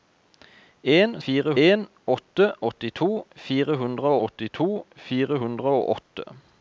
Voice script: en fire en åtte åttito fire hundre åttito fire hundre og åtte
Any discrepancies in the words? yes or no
no